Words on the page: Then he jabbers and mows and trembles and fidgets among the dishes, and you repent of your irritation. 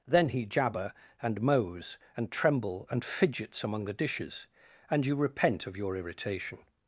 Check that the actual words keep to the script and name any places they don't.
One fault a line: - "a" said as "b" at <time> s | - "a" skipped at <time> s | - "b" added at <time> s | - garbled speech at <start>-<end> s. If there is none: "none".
- "jabbers" said as "jabber" at 0.5 s
- "trembles" said as "tremble" at 2.3 s